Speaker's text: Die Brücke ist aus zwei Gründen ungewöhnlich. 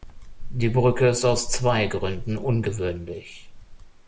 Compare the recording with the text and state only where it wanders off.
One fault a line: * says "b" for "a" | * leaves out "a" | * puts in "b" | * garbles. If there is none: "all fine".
all fine